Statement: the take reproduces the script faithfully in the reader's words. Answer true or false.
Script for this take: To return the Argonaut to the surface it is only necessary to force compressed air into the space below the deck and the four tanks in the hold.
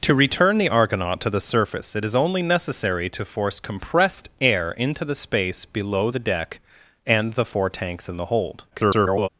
false